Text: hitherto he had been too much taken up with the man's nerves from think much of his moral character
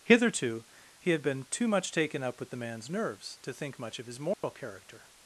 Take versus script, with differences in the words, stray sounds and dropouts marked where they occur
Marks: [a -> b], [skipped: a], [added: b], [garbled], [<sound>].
hitherto he had been too much taken up with the man's nerves [from -> to] think much of his moral [dropout] character